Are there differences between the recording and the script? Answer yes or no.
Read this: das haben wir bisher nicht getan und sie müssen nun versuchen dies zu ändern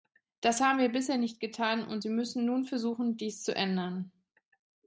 no